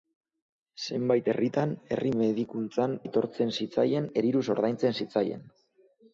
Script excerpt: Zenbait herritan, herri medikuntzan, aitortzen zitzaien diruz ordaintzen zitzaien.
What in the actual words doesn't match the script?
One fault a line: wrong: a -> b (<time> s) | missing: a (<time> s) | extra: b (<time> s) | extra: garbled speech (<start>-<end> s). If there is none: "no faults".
no faults